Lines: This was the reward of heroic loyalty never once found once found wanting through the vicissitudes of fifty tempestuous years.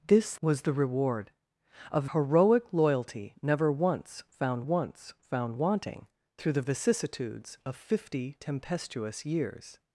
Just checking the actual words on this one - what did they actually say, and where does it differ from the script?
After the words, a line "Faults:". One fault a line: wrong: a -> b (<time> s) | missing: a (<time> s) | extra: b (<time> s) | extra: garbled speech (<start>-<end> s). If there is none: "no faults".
This was the reward of heroic loyalty never once found once found wanting through the vicissitudes of fifty tempestuous years.
Faults:
no faults